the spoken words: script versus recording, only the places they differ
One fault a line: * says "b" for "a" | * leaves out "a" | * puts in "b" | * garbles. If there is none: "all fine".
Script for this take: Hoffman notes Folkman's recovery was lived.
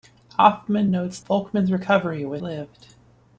all fine